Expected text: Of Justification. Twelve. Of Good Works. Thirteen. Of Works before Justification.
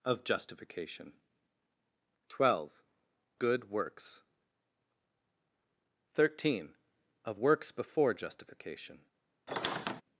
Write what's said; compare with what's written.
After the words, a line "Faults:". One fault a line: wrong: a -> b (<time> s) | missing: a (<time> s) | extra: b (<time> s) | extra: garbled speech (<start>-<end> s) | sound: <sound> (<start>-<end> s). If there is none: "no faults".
Of Justification. Twelve. Good Works. Thirteen. Of Works before Justification.
Faults:
missing: Of (2.8 s)
sound: squeak (9.5-10.0 s)